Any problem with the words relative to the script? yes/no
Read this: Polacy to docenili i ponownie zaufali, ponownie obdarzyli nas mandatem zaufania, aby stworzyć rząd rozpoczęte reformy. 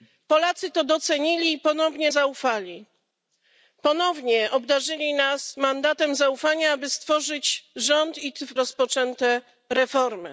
no